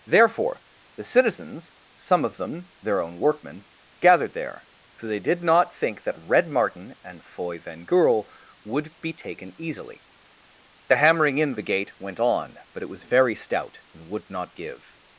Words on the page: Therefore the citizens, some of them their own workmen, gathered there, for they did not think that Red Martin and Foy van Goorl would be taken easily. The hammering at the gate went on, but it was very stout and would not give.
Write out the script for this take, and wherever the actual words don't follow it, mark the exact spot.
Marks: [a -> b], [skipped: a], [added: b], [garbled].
Therefore the citizens, some of them their own workmen, gathered there, for they did not think that Red Martin and Foy van Goorl would be taken easily. The hammering [at -> in] the gate went on, but it was very stout and would not give.